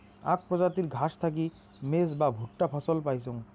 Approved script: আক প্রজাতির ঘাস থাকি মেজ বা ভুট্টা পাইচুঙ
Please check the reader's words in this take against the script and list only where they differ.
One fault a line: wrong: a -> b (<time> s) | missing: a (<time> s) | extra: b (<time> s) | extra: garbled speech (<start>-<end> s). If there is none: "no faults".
extra: ফছল (2.7 s)